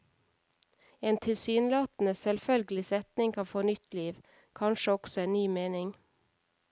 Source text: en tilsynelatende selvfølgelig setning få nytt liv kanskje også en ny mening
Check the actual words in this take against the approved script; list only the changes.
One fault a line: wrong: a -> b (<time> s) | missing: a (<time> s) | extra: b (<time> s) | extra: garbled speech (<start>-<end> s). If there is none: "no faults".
extra: kan (3.3 s)